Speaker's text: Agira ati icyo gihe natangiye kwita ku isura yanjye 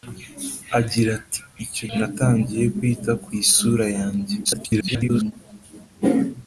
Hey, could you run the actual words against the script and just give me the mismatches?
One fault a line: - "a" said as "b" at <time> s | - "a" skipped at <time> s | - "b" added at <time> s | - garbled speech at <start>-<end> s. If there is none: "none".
- "gihe" skipped at 1.9 s
- garbled speech at 4.4-5.3 s